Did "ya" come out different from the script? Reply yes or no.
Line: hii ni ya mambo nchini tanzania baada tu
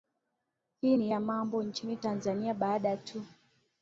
no